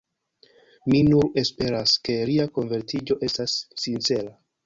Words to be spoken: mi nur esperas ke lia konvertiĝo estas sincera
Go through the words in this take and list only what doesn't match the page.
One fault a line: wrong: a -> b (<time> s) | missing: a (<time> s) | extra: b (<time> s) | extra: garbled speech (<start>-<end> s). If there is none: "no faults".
no faults